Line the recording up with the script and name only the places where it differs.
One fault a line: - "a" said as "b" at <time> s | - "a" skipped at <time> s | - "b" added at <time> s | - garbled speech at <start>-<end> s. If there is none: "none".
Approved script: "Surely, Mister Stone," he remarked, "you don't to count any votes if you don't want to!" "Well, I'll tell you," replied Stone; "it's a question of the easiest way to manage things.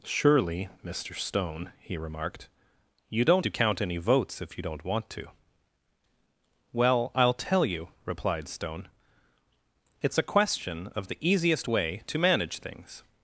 none